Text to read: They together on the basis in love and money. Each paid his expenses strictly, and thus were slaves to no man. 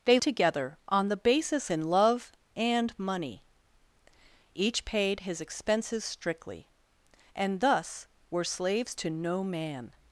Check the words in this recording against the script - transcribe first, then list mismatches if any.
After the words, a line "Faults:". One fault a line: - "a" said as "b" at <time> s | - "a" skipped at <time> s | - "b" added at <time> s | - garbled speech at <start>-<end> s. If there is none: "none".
They together on the basis in love and money. Each paid his expenses strictly, and thus were slaves to no man.
Faults:
none